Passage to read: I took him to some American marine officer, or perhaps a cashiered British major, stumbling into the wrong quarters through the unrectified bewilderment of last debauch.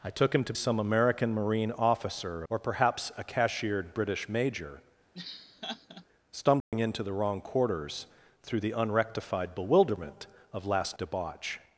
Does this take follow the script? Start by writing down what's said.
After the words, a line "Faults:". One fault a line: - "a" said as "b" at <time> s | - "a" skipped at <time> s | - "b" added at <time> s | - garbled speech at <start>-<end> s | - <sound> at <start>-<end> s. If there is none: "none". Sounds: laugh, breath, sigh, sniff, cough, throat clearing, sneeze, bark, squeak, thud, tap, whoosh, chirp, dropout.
I took him to some American marine officer, or perhaps a cashiered British major, stumbling into the wrong quarters through the unrectified bewilderment of last debauch.
Faults:
- laugh at 5.1-6.1 s
- dropout at 6.6-6.7 s